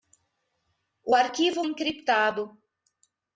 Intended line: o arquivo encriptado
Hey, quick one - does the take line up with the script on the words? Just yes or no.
yes